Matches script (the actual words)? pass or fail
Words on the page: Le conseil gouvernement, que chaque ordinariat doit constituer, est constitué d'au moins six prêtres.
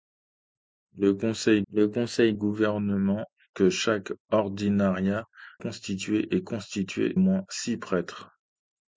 fail